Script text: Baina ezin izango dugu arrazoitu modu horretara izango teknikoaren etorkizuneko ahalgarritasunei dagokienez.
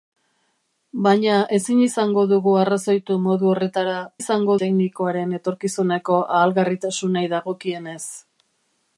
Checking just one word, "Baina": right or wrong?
right